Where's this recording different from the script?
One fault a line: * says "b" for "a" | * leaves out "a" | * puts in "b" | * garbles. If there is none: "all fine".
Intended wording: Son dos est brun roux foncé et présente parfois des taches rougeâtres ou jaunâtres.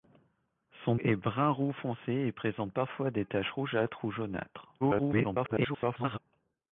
* leaves out "dos"
* garbles